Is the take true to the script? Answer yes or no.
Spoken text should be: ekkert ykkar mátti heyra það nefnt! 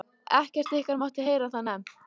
yes